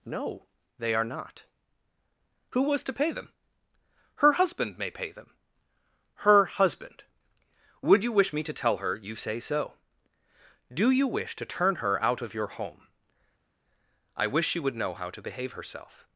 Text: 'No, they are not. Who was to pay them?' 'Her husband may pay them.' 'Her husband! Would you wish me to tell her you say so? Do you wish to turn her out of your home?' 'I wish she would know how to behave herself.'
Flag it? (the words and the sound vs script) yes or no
no